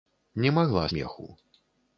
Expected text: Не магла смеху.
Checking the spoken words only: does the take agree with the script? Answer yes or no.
yes